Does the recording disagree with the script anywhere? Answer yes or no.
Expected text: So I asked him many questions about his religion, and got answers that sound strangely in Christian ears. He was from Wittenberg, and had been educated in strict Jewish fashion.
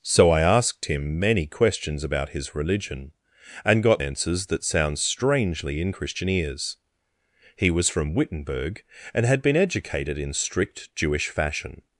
no